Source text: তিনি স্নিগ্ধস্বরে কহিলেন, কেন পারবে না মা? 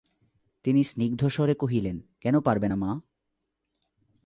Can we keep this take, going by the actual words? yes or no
yes